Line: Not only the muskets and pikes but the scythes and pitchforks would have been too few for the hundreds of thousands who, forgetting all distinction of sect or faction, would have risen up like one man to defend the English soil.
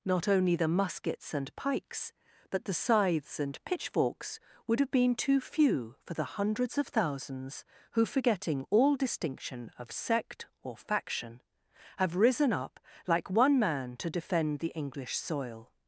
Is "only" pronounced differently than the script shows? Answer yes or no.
no